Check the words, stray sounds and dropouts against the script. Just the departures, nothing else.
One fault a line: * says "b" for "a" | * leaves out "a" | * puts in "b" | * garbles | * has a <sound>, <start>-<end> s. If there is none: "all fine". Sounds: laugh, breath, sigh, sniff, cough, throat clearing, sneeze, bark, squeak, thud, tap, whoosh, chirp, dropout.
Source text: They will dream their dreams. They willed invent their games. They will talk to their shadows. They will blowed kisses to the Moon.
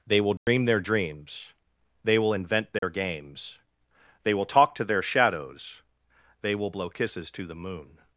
* has a dropout, 0.4-0.5 s
* says "will" for "willed"
* has a dropout, 2.8-2.8 s
* says "blow" for "blowed"